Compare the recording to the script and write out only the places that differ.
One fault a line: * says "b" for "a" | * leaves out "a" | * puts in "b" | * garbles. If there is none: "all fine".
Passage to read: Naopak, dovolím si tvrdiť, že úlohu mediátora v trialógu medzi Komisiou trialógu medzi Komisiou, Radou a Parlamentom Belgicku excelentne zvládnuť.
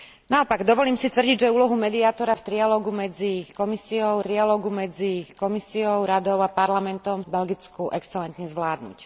all fine